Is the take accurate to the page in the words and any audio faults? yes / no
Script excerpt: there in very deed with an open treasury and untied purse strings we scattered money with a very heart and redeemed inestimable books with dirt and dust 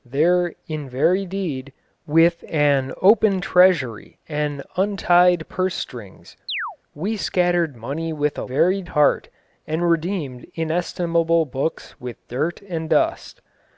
no